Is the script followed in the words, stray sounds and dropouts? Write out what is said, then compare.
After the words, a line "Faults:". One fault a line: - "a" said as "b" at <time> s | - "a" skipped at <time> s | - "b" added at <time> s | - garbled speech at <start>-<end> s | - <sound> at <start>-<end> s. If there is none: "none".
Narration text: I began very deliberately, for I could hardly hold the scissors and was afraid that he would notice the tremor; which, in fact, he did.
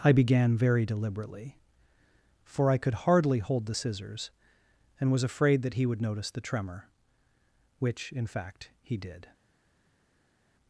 I began very deliberately, for I could hardly hold the scissors and was afraid that he would notice the tremor; which, in fact, he did.
Faults:
none